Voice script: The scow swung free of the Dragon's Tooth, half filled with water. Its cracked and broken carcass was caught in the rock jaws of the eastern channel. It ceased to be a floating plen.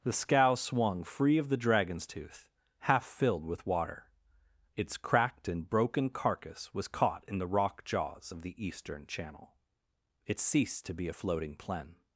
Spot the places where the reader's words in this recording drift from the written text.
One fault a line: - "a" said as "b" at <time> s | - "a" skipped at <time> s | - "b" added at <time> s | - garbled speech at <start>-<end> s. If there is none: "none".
none